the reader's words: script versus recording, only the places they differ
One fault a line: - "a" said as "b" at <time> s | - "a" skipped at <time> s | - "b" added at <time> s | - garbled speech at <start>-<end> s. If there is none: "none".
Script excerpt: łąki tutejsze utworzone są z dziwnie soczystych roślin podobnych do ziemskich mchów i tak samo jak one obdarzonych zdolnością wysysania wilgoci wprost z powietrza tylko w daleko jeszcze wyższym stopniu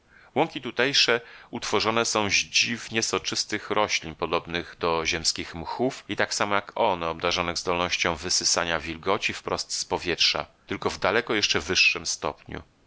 none